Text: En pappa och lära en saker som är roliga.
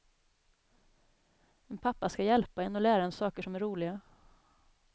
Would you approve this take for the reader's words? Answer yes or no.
no